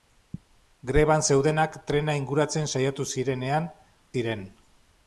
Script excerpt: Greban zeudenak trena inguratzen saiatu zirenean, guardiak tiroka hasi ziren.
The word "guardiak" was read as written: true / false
false